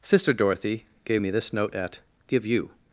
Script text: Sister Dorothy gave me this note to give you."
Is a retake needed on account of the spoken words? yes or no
yes